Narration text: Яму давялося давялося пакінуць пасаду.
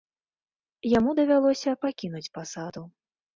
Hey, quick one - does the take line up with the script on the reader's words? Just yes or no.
no